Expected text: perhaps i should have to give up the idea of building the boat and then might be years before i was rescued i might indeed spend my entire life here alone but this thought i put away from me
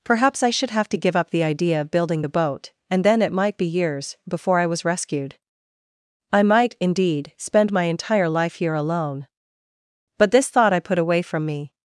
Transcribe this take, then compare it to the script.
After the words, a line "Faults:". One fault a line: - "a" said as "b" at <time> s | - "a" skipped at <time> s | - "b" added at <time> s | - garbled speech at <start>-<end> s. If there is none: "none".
perhaps i should have to give up the idea of building the boat and then it might be years before i was rescued i might indeed spend my entire life here alone but this thought i put away from me
Faults:
- "it" added at 3.2 s